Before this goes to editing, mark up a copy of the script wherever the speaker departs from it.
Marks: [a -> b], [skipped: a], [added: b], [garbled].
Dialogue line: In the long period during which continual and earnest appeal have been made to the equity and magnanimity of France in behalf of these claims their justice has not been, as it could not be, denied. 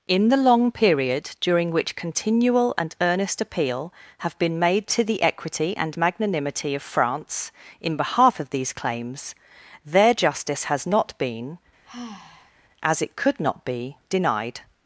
In the long period during which continual and earnest appeal have been made to the equity and magnanimity of France in behalf of these claims their justice has not been, as it could not be, denied.